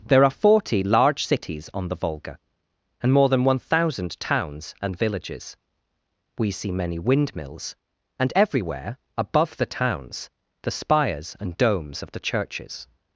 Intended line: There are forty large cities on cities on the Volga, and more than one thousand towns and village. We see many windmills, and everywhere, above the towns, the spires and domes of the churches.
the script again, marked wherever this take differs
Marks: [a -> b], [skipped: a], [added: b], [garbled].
There are forty large cities on [skipped: cities on] the Volga, and more than one thousand towns and [village. -> villages] We see many windmills, and everywhere, above the towns, the spires and domes of the churches.